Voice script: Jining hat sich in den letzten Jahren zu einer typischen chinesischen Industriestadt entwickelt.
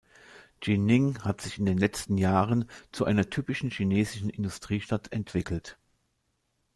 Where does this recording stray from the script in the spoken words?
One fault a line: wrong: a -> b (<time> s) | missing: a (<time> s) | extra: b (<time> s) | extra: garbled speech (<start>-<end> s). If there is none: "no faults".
no faults